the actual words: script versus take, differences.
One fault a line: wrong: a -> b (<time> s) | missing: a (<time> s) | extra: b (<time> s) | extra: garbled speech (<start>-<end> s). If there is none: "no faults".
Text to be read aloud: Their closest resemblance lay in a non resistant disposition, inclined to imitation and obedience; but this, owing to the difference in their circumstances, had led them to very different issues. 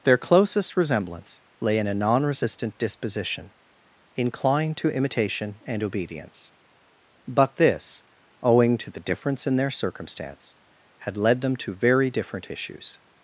wrong: circumstances -> circumstance (9.7 s)